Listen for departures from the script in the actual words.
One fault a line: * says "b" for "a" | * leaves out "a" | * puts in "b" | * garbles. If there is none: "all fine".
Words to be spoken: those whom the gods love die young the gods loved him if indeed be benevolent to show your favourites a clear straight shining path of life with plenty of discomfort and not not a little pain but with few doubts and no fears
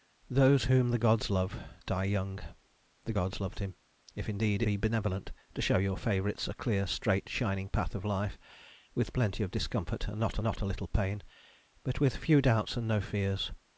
all fine